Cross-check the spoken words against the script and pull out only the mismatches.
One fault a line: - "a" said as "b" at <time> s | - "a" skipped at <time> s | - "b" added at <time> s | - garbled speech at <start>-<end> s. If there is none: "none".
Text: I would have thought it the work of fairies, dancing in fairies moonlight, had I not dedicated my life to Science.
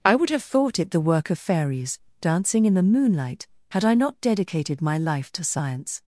- "fairies" said as "the" at 2.7 s